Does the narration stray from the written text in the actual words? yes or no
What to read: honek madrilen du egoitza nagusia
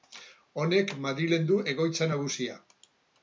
no